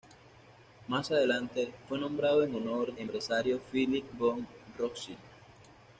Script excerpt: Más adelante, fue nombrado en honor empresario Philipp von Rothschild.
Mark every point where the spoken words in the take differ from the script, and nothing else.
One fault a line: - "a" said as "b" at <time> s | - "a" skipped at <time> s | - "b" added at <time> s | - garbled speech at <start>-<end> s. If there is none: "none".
none